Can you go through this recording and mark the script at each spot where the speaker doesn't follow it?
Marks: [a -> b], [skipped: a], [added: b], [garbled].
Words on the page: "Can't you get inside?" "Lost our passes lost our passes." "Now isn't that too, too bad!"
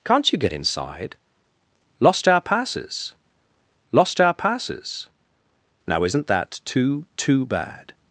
"Can't you get inside?" "Lost our passes lost our passes." "Now isn't that too, too bad!"